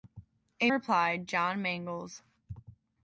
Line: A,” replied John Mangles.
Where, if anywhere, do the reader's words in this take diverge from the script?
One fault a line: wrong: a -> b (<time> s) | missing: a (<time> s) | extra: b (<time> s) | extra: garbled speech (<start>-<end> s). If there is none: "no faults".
no faults